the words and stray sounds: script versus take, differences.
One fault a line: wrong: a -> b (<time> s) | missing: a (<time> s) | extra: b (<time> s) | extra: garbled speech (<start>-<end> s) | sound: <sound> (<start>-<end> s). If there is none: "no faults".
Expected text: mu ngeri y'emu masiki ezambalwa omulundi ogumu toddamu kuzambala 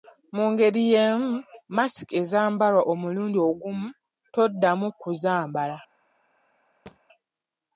sound: thud (6.9-7.0 s)